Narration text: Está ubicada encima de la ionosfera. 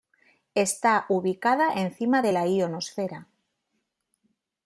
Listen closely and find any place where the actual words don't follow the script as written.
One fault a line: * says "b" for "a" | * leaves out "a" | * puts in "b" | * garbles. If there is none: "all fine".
all fine